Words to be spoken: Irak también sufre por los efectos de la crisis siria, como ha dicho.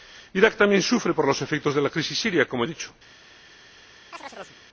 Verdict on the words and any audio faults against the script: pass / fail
fail